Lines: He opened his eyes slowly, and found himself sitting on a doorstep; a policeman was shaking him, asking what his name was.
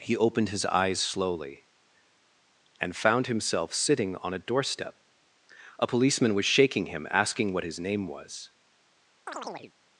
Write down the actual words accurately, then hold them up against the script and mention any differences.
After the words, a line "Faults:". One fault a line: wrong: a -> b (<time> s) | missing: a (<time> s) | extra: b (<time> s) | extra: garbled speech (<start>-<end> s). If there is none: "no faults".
He opened his eyes slowly, and found himself sitting on a doorstep; a policeman was shaking him, asking what his name was.
Faults:
no faults